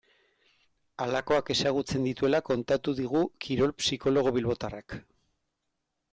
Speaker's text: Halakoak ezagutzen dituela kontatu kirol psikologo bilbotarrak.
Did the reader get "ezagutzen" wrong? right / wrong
right